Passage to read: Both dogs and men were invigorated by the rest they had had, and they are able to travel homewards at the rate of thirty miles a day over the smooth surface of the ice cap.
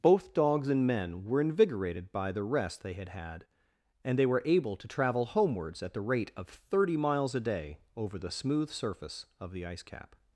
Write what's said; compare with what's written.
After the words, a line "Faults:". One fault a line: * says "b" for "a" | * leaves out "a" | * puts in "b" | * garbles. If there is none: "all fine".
Both dogs and men were invigorated by the rest they had had, and they were able to travel homewards at the rate of thirty miles a day over the smooth surface of the ice cap.
Faults:
* says "were" for "are"